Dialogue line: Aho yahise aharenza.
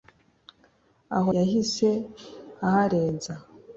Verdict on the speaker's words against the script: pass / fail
pass